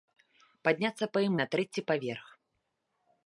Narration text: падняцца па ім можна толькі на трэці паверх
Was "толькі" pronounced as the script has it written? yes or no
no